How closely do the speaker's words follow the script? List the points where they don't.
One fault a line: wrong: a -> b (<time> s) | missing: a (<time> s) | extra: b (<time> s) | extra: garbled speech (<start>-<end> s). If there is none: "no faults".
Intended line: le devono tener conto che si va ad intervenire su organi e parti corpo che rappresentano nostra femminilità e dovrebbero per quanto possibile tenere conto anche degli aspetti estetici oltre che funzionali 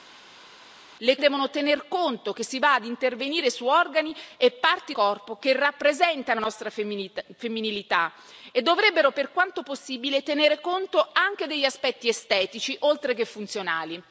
no faults